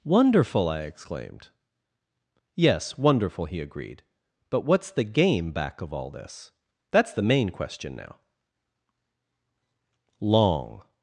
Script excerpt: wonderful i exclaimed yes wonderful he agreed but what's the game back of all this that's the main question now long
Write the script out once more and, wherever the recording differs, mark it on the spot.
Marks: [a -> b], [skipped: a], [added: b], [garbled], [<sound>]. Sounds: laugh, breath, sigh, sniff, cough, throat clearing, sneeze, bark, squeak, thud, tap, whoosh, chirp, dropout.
wonderful i exclaimed yes wonderful he agreed but what's the game back of all this that's the main question now long